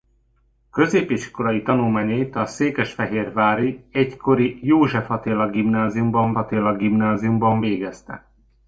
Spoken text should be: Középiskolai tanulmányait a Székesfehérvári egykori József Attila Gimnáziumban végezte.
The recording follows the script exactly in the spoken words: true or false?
false